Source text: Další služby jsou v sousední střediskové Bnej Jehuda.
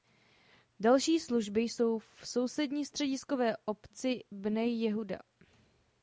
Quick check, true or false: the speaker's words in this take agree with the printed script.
false